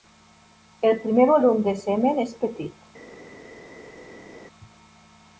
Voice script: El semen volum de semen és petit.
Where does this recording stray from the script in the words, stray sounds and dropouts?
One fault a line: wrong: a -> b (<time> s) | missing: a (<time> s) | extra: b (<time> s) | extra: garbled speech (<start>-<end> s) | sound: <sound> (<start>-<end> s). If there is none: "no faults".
wrong: semen -> primer (1.0 s)